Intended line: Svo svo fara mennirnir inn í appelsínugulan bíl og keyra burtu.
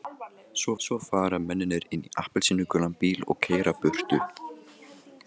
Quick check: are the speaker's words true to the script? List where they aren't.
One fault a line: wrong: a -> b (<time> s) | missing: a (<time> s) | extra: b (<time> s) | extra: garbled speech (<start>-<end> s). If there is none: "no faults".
no faults